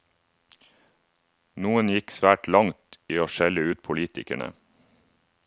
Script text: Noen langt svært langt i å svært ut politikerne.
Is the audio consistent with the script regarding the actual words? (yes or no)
no